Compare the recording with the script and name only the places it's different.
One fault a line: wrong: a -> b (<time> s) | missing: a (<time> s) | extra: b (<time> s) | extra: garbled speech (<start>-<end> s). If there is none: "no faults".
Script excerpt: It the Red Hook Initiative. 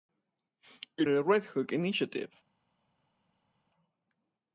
no faults